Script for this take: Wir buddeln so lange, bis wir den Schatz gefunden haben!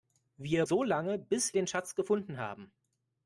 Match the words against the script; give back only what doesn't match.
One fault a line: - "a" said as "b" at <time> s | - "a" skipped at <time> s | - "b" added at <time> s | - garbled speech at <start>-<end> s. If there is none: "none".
- "buddeln" skipped at 0.7 s
- "wir" skipped at 1.6 s